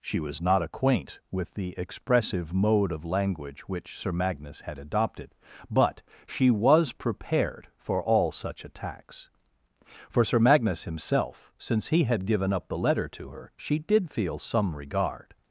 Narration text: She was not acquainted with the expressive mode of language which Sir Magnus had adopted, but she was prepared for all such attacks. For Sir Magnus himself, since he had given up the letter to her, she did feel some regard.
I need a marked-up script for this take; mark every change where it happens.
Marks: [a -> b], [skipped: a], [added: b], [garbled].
She was not [acquainted -> acquaint] with the expressive mode of language which Sir Magnus had adopted, but she was prepared for all such attacks. For Sir Magnus himself, since he had given up the letter to her, she did feel some regard.